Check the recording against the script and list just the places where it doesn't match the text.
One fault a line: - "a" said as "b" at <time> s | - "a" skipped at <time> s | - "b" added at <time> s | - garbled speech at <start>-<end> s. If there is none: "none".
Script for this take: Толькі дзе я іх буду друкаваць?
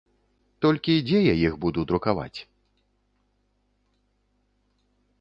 none